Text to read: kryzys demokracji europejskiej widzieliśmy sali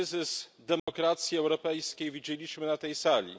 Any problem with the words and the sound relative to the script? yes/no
yes